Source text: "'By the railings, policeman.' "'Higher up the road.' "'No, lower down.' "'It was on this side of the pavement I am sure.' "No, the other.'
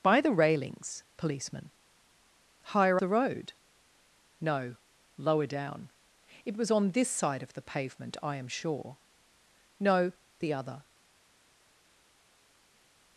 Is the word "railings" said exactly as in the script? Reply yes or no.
yes